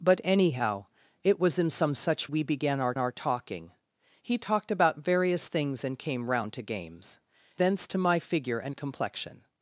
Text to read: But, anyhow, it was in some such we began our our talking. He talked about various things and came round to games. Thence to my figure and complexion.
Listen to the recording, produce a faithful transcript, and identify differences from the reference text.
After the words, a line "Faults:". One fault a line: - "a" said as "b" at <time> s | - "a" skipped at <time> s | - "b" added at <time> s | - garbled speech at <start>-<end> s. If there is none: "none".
But, anyhow, it was in some such we began our our talking. He talked about various things and came round to games. Thence to my figure and complexion.
Faults:
none